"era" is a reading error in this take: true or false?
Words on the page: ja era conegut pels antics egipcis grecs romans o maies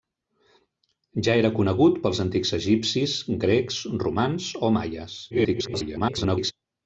false